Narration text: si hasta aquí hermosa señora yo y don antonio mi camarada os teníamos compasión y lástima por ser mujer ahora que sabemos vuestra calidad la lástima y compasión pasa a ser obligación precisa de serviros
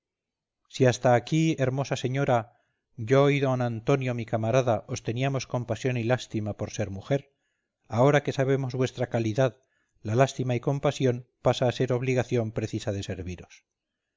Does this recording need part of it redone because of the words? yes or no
no